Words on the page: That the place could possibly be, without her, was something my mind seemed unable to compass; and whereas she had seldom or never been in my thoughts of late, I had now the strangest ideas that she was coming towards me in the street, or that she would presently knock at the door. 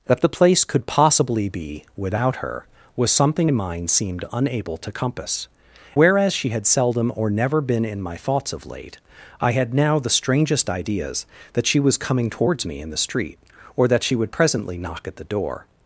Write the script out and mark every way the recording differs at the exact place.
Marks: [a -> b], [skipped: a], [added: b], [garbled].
That the place could possibly be, without her, was something [skipped: my] mind seemed unable to compass; [skipped: and] whereas she had seldom or never been in my thoughts of late, I had now the strangest ideas that she was coming towards me in the street, or that she would presently knock at the door.